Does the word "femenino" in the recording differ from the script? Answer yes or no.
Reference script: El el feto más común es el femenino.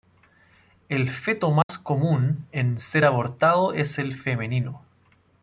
no